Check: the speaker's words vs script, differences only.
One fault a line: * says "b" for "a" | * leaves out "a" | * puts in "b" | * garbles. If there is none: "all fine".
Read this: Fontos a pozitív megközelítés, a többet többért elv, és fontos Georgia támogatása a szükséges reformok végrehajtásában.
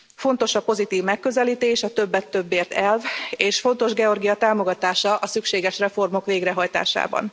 all fine